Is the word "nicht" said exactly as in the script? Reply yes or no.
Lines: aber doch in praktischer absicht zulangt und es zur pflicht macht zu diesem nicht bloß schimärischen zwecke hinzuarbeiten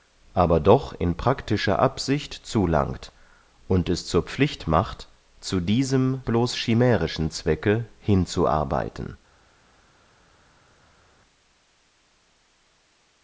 no